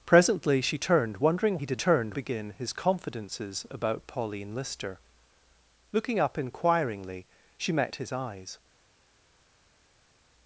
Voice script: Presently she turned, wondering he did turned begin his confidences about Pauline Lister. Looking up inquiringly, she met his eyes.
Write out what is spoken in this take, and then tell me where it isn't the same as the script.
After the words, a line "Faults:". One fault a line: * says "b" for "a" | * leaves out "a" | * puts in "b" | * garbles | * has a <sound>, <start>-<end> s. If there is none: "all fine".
Presently she turned, wondering he did turned begin his confidences about Pauline Lister. Looking up inquiringly, she met his eyes.
Faults:
all fine